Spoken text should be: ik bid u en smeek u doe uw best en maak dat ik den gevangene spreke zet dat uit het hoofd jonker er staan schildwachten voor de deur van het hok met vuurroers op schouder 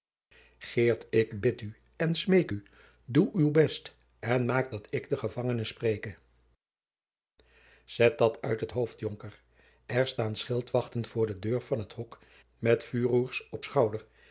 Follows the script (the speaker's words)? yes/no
yes